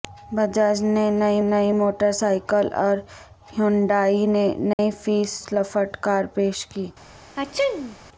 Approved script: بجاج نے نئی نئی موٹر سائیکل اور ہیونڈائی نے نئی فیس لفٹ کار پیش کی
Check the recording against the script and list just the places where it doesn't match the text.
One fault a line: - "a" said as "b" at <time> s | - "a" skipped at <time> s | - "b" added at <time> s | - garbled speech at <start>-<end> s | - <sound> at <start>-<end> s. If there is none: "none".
- dropout at 4.7-4.8 s
- sneeze at 7.4-8.0 s